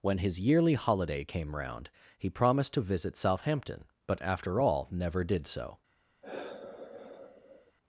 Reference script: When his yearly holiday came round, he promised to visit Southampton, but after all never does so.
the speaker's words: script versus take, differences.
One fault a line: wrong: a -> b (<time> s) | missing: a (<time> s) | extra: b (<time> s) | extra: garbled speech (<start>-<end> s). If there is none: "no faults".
wrong: does -> did (5.2 s)